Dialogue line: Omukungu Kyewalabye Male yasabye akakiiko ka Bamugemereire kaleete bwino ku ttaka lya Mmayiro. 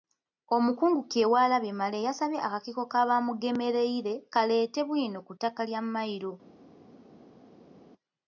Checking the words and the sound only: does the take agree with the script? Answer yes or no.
yes